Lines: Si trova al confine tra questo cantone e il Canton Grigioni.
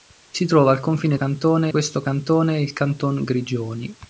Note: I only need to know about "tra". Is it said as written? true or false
false